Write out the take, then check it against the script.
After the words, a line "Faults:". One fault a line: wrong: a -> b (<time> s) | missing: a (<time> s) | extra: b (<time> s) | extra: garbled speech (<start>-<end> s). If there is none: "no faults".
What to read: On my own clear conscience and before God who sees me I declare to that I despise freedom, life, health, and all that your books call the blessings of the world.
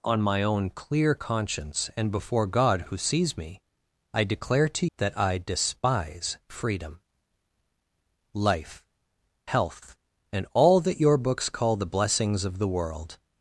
On my own clear conscience and before God who sees me I declare to that I despise freedom, life, health, and all that your books call the blessings of the world.
Faults:
no faults